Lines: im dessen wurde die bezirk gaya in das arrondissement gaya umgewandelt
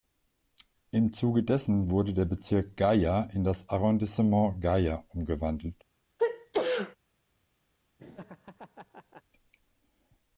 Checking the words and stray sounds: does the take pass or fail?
fail